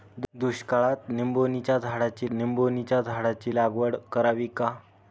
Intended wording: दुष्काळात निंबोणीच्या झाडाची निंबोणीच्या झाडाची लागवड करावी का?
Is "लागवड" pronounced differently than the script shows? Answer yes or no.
no